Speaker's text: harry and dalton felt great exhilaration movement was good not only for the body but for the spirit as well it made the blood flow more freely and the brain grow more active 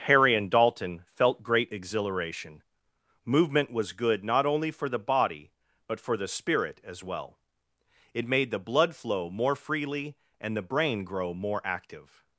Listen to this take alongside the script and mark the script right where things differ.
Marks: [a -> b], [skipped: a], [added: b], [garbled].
harry and dalton felt great exhilaration movement was good not only for the body but for the spirit as well it made the blood flow more freely and the brain grow more active